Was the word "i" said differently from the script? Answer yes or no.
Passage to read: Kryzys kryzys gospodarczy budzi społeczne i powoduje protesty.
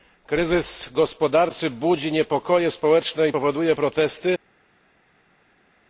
no